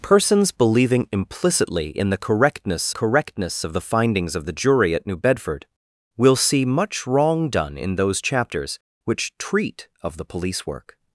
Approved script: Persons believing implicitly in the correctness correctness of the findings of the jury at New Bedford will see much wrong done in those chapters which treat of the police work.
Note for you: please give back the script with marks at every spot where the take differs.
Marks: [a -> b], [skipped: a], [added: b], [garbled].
Persons believing implicitly in the correctness correctness of the findings of the jury at New Bedford will see much wrong done in those chapters which treat of the police work.